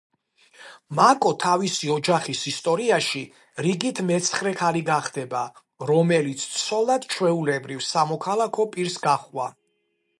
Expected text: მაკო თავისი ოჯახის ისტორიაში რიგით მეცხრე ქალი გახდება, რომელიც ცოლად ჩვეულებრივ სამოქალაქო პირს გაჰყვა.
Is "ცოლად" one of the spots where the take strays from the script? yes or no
no